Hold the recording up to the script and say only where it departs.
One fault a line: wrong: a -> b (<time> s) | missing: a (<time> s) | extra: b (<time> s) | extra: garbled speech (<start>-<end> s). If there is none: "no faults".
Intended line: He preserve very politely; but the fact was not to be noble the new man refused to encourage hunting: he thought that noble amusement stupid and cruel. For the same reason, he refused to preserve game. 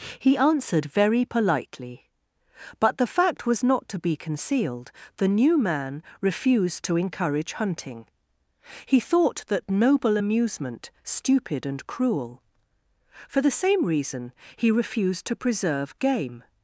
wrong: preserve -> answered (0.4 s)
wrong: noble -> concealed (4.2 s)